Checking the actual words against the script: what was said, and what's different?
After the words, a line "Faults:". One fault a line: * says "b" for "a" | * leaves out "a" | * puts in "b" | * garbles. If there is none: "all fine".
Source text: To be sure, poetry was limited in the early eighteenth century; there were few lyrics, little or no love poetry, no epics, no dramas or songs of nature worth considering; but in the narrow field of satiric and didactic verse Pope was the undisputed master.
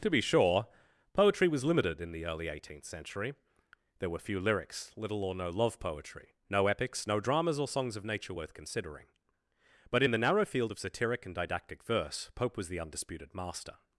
To be sure, poetry was limited in the early eighteenth century; there were few lyrics, little or no love poetry, no epics, no dramas or songs of nature worth considering; but in the narrow field of satiric and didactic verse Pope was the undisputed master.
Faults:
all fine